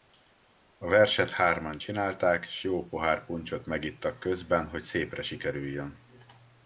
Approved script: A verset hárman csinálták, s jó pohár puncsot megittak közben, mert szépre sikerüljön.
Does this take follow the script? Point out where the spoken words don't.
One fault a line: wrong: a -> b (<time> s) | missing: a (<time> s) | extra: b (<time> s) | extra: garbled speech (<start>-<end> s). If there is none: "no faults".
wrong: mert -> hogy (4.7 s)